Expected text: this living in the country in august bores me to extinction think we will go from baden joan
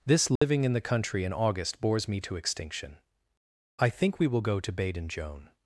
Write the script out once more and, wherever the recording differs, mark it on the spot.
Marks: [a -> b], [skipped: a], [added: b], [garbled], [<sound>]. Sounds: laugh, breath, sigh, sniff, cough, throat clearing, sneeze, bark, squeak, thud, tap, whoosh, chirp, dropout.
this living [dropout] in the country in august bores me to extinction [added: i] think we will go [from -> to] baden joan